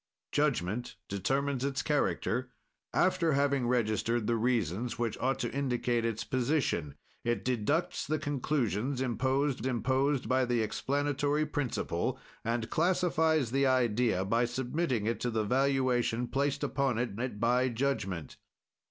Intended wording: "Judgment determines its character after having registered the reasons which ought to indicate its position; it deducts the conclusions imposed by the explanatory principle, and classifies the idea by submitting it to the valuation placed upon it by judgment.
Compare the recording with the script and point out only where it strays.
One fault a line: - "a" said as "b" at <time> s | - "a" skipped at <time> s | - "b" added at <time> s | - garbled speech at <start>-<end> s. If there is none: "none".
- "imposed" added at 9.7 s
- "it" added at 17.2 s